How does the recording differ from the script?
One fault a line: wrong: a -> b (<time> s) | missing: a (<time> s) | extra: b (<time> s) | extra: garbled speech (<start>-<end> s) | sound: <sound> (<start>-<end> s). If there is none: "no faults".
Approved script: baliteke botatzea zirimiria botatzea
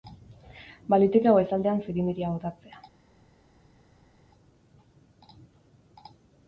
wrong: botatzea -> goizaldean (1.4 s)